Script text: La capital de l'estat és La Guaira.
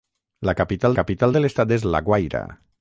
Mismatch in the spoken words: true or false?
true